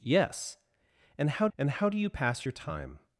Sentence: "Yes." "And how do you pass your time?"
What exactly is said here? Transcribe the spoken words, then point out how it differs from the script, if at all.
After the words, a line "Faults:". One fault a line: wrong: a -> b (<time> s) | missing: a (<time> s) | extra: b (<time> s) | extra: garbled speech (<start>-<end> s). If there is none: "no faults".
"Yes." "And how and how do you pass your time?"
Faults:
extra: and how (1.5 s)